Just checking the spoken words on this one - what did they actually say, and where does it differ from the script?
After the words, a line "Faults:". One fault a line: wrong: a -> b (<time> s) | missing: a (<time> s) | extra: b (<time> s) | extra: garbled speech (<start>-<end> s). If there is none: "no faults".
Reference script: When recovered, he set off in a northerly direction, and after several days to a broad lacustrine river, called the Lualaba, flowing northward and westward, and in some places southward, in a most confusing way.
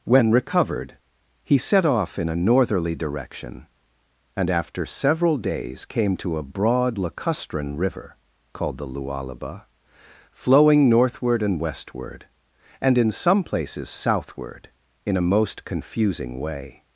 When recovered, he set off in a northerly direction, and after several days came to a broad lacustrine river, called the Lualaba, flowing northward and westward, and in some places southward, in a most confusing way.
Faults:
extra: came (5.8 s)